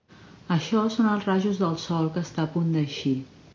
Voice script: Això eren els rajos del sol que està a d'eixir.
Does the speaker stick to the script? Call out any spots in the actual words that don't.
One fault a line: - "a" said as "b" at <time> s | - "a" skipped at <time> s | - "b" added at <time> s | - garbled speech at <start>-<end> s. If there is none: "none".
- "eren" said as "són" at 0.9 s
- "punt" added at 2.6 s